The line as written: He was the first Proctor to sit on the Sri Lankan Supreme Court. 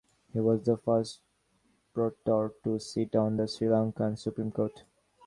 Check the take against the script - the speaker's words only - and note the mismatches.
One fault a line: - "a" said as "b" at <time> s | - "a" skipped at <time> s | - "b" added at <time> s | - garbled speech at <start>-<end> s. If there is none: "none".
none